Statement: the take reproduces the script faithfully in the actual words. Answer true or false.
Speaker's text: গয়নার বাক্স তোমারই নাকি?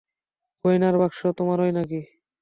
true